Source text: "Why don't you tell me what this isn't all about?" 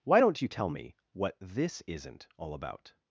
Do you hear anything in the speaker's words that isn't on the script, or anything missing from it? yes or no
no